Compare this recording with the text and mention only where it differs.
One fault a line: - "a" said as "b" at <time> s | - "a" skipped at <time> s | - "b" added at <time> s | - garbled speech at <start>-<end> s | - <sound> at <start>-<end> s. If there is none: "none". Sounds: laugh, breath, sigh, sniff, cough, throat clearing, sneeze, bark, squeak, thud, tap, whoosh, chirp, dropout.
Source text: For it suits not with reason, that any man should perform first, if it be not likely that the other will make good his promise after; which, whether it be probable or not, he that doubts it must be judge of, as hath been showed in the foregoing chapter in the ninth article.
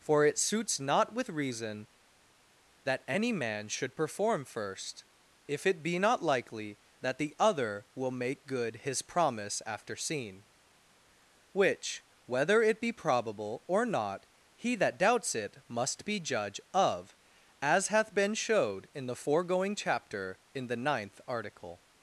- "seen" added at 10.0 s